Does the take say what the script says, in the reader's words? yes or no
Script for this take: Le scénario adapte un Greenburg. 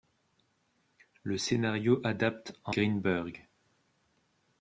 yes